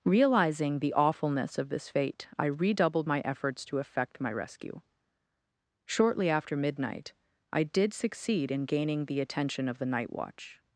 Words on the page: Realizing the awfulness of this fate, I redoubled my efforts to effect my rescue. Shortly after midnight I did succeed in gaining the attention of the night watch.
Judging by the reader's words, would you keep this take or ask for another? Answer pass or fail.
pass